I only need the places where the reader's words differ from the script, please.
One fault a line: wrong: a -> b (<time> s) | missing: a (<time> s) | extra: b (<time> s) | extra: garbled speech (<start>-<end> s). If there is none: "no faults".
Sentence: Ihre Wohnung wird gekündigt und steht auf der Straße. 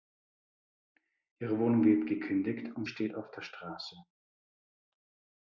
no faults